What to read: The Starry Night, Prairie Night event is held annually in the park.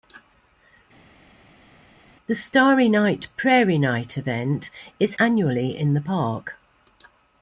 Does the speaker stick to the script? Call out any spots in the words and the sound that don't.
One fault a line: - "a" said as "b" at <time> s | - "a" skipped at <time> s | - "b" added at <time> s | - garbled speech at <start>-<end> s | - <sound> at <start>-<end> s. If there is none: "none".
- "held" skipped at 5.2 s